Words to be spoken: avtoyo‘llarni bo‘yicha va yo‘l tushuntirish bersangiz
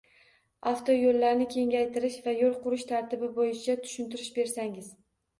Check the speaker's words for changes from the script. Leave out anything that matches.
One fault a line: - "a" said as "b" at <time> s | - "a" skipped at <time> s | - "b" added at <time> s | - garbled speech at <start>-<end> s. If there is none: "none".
- "bo‘yicha" said as "kengaytirish" at 1.6 s
- "qurish tartibi bo‘yicha" added at 2.6 s